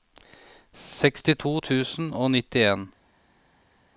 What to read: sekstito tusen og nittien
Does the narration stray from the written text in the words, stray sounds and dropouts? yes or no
no